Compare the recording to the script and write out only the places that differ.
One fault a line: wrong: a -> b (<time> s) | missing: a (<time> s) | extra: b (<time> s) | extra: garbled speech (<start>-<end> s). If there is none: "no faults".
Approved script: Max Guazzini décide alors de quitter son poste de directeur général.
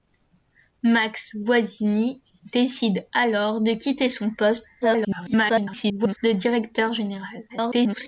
extra: garbled speech (4.8-6.2 s)
extra: garbled speech (7.5-8.1 s)